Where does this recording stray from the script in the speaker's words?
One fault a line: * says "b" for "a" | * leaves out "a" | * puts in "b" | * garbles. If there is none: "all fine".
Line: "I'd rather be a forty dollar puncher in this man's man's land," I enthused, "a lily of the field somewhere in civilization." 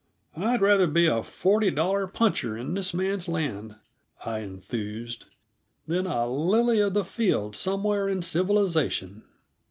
* leaves out "man's"
* puts in "than"